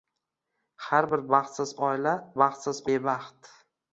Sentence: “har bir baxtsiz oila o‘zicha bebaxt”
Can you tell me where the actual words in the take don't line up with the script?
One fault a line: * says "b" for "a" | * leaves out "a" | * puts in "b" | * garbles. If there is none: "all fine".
* says "baxtsiz" for "o‘zicha"